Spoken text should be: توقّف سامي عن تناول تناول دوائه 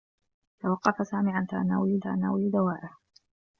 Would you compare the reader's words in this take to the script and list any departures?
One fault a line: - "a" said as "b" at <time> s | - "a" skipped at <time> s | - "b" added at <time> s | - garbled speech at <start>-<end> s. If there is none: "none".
none